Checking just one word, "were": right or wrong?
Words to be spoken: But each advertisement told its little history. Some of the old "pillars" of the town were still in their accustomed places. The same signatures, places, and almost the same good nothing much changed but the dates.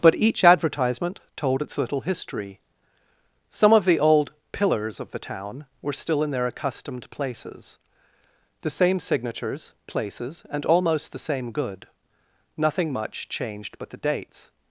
right